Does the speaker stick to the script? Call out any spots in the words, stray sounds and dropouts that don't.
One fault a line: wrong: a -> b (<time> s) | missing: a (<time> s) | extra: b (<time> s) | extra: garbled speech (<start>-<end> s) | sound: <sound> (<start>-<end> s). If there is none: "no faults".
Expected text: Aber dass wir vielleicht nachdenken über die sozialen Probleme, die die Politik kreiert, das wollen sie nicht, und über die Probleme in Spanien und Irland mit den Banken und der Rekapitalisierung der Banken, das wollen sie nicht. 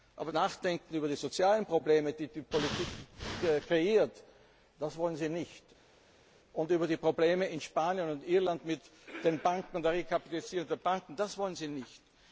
missing: dass wir vielleicht (0.3 s)